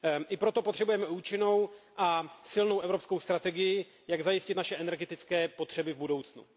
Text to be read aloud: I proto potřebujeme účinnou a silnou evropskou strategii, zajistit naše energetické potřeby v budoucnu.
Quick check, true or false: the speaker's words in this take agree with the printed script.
false